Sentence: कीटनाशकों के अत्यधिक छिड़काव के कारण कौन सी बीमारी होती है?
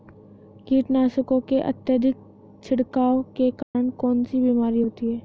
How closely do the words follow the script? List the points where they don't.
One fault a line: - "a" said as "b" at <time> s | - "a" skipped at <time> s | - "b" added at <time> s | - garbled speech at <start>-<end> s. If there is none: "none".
none